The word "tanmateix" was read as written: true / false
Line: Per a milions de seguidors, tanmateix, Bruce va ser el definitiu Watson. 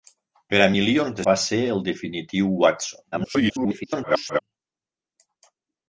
false